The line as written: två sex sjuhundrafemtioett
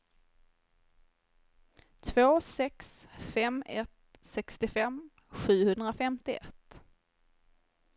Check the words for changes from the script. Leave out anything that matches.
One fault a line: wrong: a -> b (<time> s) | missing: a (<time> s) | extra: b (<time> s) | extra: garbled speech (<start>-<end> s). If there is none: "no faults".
extra: fem ett sextiofem (3.2 s)